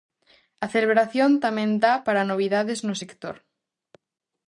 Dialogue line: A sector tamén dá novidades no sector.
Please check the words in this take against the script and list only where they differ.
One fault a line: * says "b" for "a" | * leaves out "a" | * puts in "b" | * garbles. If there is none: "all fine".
* says "celebración" for "sector"
* puts in "para"